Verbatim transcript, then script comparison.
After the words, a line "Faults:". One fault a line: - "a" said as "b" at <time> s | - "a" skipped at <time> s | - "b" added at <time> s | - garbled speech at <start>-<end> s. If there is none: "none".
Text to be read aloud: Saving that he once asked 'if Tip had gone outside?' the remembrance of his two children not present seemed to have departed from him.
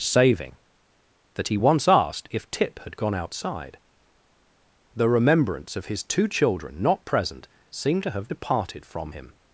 Saving that he once asked 'if Tip had gone outside?' the remembrance of his two children not present seemed to have departed from him.
Faults:
none